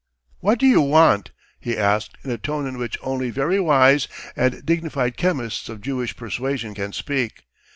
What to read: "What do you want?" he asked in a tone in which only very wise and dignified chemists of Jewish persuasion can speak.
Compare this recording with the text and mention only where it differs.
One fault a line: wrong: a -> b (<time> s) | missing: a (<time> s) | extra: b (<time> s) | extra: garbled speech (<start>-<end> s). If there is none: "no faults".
no faults